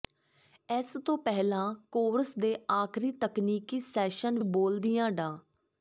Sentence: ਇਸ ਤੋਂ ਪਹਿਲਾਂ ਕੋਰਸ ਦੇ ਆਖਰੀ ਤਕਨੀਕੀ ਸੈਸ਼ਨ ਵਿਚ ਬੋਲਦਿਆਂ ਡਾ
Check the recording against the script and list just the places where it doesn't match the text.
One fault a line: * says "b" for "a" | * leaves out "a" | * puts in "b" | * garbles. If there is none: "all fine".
* leaves out "ਵਿਚ"